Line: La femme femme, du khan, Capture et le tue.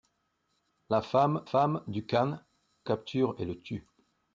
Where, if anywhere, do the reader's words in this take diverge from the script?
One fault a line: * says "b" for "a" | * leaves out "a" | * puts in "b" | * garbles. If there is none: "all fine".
all fine